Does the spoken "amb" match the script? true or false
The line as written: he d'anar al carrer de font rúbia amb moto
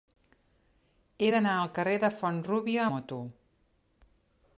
false